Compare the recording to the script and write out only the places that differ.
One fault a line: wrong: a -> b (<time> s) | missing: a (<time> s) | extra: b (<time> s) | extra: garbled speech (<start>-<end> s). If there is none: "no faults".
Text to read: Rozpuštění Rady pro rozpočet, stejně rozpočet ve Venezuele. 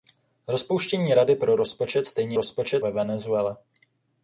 no faults